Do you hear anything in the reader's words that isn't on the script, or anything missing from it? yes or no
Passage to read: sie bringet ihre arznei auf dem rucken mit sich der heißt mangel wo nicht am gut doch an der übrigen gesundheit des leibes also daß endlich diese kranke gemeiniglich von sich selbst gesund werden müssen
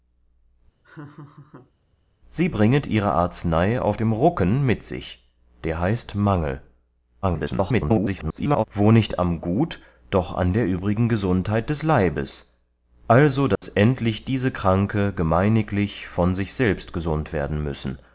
yes